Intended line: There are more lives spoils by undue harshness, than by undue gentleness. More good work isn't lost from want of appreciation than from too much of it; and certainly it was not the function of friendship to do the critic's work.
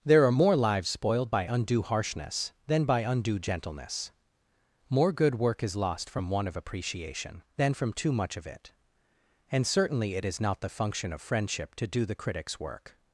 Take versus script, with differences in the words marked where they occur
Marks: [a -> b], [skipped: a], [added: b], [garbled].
There are more lives [spoils -> spoiled] by undue harshness, than by undue gentleness. More good work [isn't -> is] lost from want of appreciation than from too much of it; and certainly it [was -> is] not the function of friendship to do the critic's work.